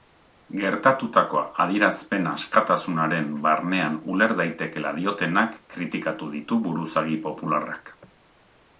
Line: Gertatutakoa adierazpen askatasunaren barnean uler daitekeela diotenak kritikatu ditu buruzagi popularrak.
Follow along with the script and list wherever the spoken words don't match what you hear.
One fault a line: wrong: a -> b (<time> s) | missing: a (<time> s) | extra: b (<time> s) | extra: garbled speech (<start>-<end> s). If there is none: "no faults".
no faults